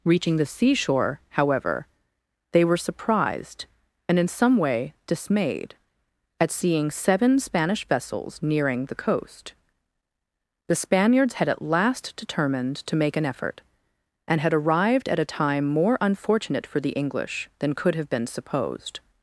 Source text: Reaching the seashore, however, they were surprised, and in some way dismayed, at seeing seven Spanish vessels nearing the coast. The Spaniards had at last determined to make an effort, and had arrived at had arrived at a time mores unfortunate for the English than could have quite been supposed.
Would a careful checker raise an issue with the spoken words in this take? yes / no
yes